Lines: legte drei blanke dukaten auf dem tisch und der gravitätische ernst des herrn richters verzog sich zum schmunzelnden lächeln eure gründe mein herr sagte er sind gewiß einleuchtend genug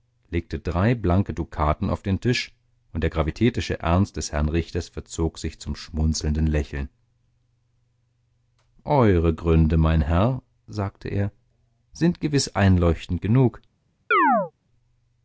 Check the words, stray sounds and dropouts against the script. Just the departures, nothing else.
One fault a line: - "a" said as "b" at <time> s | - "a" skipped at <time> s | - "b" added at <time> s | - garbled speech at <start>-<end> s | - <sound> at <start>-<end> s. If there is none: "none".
- "dem" said as "den" at 2.0 s
- chirp at 14.1-14.5 s